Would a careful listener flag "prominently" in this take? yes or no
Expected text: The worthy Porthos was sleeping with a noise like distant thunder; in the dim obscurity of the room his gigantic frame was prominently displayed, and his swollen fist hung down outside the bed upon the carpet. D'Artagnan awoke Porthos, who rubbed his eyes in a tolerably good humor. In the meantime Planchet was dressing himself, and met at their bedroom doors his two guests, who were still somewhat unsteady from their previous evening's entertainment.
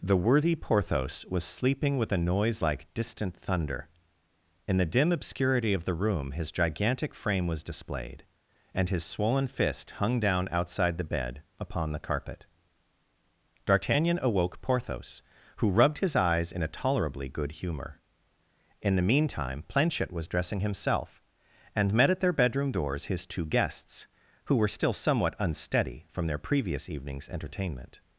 yes